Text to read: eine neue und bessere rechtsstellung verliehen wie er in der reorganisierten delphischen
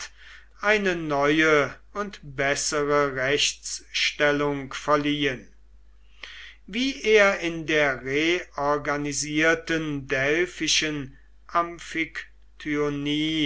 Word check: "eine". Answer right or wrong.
right